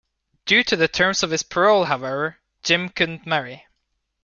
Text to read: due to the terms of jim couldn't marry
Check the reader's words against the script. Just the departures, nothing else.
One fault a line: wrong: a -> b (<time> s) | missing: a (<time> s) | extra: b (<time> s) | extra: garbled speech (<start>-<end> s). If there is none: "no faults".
extra: his parole however (1.3 s)